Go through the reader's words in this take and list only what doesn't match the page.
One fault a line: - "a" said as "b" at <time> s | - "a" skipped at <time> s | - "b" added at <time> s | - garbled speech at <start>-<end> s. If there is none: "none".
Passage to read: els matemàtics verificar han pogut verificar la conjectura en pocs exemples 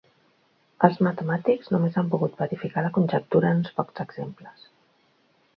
- "verificar" said as "només" at 1.8 s
- "uns" added at 3.6 s